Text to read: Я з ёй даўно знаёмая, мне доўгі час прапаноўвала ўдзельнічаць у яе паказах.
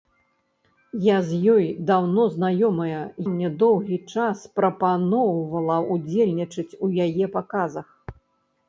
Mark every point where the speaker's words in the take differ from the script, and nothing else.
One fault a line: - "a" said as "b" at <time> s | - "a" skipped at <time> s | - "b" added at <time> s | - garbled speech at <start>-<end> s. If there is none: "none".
none